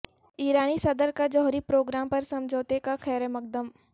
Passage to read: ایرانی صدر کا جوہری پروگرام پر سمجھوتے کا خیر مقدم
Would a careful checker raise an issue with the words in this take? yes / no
no